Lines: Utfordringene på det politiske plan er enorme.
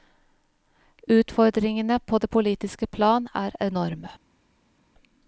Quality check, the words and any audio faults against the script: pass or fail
pass